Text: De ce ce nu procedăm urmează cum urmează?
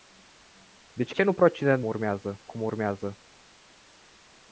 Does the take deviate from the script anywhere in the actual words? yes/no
no